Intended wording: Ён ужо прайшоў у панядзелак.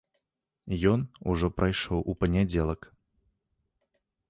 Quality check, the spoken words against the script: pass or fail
pass